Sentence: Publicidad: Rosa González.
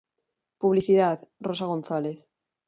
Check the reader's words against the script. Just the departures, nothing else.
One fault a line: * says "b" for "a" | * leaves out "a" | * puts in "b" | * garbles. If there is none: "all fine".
all fine